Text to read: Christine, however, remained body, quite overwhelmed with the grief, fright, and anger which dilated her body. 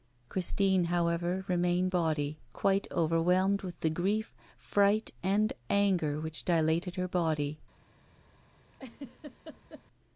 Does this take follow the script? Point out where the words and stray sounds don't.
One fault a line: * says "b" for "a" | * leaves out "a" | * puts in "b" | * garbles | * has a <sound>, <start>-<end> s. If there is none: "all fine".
* has a laugh, 8.7-9.8 s